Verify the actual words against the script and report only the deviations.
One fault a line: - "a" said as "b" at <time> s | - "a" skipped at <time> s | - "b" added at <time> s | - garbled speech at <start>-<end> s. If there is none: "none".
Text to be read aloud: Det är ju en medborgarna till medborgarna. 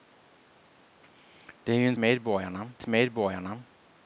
none